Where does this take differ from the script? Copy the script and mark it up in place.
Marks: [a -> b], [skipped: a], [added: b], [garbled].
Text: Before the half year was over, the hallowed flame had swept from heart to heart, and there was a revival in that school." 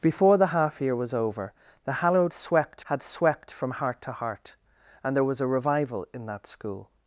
Before the half year was over, the hallowed [flame -> swept] had swept from heart to heart, and there was a revival in that school."